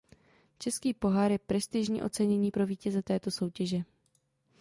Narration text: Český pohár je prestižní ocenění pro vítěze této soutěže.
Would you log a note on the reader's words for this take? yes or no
no